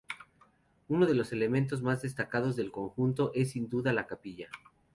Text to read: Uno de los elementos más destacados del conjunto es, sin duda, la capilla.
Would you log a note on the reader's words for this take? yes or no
no